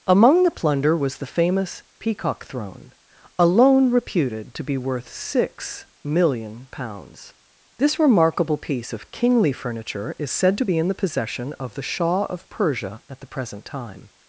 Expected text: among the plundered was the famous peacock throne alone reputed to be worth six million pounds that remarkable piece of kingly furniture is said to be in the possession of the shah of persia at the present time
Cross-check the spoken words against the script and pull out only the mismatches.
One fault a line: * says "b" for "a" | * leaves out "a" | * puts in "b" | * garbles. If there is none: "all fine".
* says "plunder" for "plundered"
* says "this" for "that"